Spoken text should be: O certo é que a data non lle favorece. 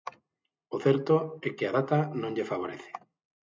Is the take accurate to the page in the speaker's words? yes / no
yes